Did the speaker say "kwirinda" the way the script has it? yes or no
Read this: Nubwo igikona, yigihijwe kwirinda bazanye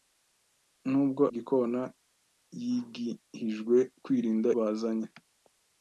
yes